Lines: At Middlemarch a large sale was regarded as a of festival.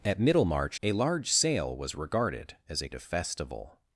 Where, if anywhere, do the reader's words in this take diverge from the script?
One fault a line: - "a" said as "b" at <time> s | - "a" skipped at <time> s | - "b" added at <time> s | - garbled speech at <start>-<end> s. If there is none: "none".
none